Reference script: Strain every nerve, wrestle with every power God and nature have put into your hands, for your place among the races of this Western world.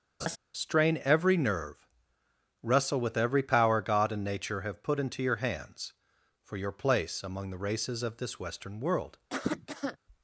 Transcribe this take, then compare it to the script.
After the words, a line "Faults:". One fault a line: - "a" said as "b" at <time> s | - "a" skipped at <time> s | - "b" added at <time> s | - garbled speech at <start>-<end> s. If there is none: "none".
Strain every nerve, wrestle with every power God and nature have put into your hands, for your place among the races of this Western world.
Faults:
none